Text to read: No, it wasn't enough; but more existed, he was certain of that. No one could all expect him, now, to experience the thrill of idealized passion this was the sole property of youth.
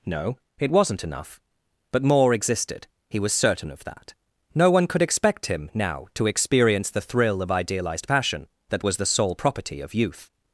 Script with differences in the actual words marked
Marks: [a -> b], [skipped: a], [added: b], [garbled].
No, it wasn't enough; but more existed, he was certain of that. No one could [skipped: all] expect him, now, to experience the thrill of idealized passion [this -> that] was the sole property of youth.